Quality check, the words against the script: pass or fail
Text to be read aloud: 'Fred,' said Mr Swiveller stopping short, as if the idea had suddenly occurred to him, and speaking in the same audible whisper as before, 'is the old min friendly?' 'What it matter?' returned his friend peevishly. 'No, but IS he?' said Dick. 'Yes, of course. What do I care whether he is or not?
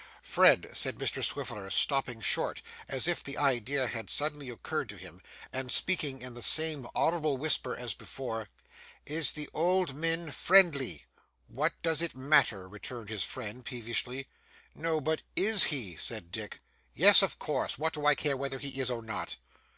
fail